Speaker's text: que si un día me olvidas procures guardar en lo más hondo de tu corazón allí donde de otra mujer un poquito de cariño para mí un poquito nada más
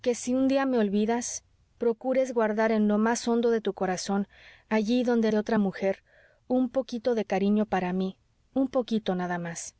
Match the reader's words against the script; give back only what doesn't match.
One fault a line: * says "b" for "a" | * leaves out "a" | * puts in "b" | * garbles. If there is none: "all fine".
all fine